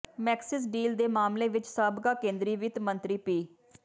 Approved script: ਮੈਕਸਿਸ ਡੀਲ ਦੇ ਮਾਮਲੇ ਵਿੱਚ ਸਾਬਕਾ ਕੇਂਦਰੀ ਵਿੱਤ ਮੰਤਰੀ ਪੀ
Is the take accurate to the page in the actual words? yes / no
yes